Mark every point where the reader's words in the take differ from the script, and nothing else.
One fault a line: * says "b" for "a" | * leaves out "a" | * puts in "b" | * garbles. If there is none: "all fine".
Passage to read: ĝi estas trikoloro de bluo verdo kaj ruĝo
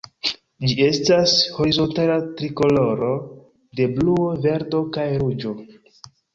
* puts in "horizontala"